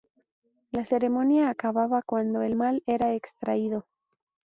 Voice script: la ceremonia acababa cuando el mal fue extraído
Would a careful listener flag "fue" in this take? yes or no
yes